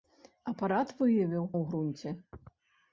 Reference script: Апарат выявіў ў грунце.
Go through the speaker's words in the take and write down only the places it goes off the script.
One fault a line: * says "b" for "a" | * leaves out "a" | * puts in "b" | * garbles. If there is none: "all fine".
all fine